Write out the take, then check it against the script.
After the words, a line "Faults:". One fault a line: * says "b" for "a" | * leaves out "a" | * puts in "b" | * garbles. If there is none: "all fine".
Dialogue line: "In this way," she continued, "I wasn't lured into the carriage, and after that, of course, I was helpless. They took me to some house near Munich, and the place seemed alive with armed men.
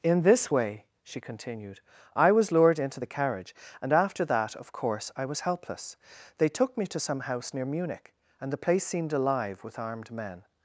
"In this way," she continued, "I was lured into the carriage, and after that, of course, I was helpless. They took me to some house near Munich, and the place seemed alive with armed men.
Faults:
* says "was" for "wasn't"